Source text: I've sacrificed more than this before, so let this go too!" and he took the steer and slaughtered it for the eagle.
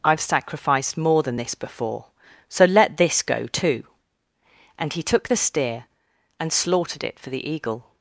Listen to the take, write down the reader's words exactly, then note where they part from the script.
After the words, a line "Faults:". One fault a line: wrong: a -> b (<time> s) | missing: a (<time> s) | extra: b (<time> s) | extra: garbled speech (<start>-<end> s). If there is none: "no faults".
I've sacrificed more than this before, so let this go too!" and he took the steer and slaughtered it for the eagle.
Faults:
no faults